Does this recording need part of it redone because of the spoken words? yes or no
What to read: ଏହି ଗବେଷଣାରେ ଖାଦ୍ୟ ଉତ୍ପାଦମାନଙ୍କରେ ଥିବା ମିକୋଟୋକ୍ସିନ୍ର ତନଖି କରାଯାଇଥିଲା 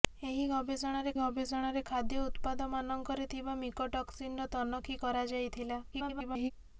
yes